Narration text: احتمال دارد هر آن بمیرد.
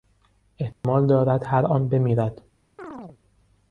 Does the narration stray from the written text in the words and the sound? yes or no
yes